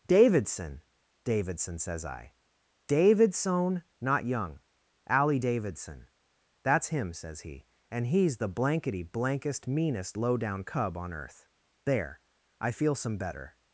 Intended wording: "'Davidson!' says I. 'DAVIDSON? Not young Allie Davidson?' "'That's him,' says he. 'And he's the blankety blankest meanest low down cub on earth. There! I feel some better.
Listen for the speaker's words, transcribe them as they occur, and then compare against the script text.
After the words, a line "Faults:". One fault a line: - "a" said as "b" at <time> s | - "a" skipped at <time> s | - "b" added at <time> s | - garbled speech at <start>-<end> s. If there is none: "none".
"'Davidson!' davidson says I. 'DAVIDSON? Not young Allie Davidson?' "'That's him,' says he. 'And he's the blankety blankest meanest low down cub on earth. There! I feel some better.
Faults:
- "davidson" added at 1.2 s